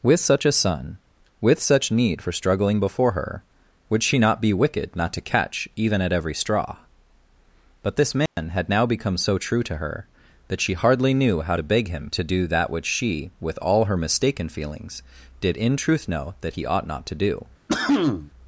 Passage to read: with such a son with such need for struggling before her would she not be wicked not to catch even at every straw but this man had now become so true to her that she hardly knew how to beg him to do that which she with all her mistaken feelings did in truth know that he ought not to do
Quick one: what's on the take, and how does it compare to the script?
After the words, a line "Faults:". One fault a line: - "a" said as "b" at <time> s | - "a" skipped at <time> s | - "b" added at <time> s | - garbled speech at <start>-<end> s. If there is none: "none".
with such a son with such need for struggling before her would she not be wicked not to catch even at every straw but this man had now become so true to her that she hardly knew how to beg him to do that which she with all her mistaken feelings did in truth know that he ought not to do
Faults:
none